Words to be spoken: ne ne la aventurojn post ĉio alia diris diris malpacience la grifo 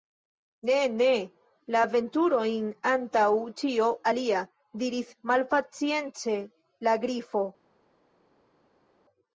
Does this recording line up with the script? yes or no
no